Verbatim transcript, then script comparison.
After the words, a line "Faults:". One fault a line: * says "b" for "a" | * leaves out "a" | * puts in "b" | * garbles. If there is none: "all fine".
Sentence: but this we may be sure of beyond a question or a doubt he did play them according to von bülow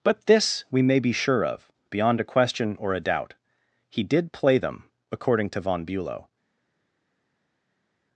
but this we may be sure of beyond a question or a doubt he did play them according to von bülow
Faults:
all fine